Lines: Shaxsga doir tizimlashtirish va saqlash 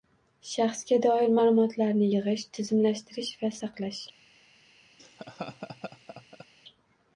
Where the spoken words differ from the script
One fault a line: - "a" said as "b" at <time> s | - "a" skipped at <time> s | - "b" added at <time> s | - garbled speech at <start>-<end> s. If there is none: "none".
- "ma'lumotlarni yig‘ish" added at 1.4 s